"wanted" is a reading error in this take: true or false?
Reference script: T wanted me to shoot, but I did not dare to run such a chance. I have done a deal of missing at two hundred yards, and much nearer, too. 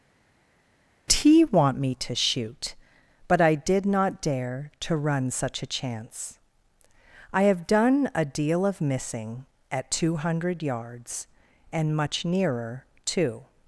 true